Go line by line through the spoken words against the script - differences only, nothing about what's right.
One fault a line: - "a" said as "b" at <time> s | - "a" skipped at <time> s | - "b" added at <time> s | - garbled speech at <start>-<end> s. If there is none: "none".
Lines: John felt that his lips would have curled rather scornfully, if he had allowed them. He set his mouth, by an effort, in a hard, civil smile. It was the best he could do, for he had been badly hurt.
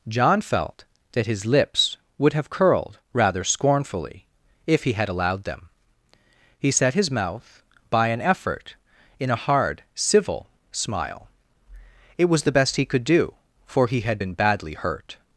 none